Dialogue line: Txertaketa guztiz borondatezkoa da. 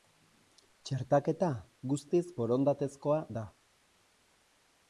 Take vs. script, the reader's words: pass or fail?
pass